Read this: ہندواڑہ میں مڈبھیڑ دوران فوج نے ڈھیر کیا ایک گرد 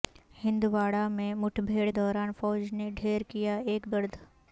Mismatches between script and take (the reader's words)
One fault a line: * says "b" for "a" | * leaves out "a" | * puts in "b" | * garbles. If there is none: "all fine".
all fine